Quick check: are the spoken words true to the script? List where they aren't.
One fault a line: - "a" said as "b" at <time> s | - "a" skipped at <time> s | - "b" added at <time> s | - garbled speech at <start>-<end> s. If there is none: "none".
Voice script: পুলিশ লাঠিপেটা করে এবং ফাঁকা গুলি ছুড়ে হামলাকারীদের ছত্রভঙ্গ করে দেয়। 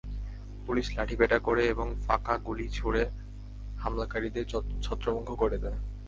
none